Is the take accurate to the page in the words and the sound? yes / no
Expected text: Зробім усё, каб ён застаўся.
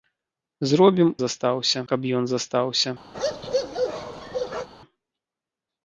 no